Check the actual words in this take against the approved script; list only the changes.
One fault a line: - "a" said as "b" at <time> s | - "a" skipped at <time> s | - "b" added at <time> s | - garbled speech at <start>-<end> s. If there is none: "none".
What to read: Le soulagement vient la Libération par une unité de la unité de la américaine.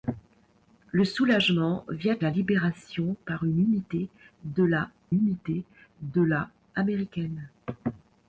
none